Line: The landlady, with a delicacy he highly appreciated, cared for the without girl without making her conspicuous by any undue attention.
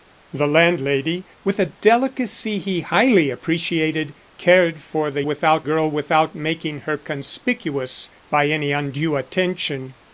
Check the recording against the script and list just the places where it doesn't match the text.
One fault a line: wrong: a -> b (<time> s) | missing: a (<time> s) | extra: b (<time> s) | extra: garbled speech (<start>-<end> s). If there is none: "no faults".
no faults